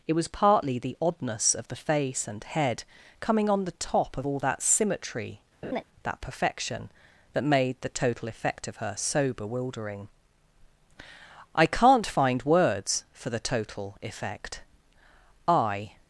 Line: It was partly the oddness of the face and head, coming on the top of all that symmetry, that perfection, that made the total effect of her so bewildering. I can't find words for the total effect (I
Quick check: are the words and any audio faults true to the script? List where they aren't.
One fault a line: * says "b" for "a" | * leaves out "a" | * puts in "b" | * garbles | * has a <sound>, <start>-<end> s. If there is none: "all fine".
* has a laugh, 5.6-5.8 s